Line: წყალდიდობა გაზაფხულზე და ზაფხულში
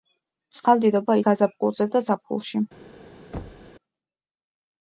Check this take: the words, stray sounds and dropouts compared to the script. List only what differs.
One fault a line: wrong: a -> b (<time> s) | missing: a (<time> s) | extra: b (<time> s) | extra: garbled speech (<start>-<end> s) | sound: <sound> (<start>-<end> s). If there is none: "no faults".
sound: thud (3.3-3.7 s)